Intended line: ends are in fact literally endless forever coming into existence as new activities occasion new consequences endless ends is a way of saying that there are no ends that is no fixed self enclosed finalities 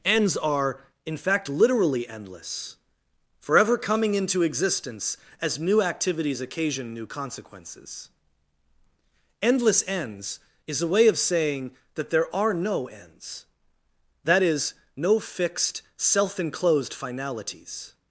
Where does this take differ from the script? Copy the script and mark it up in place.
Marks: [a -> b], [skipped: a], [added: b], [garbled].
ends are in fact literally endless forever coming into existence as new activities occasion new consequences endless ends is a way of saying that there are no ends that is no fixed self enclosed finalities